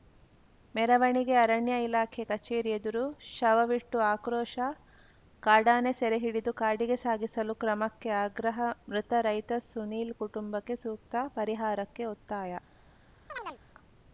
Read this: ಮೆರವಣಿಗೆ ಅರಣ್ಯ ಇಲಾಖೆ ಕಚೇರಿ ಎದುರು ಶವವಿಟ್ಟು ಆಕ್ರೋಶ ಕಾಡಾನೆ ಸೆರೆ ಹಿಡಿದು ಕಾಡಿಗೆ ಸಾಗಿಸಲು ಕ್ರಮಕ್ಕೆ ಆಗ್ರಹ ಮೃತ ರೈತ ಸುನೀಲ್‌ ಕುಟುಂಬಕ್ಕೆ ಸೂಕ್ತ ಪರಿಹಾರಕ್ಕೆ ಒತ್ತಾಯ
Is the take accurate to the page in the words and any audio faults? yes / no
no